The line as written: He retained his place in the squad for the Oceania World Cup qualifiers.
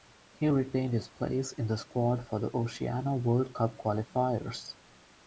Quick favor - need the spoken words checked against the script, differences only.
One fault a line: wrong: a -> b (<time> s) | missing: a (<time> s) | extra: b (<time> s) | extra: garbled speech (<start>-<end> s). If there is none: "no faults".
no faults